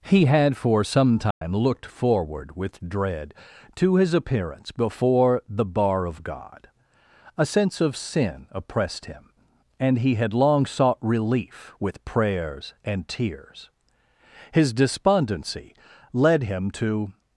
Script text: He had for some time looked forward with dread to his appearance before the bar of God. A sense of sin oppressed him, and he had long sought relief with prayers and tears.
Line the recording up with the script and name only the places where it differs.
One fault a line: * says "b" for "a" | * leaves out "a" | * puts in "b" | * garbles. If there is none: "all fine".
* puts in "His despondency led him to"